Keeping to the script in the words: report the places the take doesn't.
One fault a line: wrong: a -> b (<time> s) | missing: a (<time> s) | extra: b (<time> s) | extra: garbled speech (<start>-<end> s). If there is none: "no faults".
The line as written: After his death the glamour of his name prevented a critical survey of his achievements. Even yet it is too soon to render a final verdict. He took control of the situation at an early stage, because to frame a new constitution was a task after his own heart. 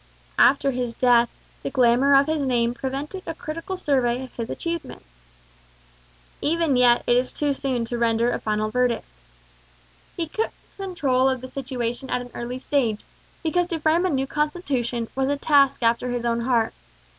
no faults